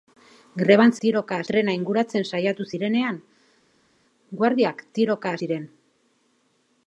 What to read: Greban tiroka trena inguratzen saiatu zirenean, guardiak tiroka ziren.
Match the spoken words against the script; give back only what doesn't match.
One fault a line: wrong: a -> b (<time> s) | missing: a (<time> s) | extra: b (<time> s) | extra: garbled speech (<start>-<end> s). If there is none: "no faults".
no faults